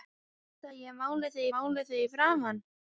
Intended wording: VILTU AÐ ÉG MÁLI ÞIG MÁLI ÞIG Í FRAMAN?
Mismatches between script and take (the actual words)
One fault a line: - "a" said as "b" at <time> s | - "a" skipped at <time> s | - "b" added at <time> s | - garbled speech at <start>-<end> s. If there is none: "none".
none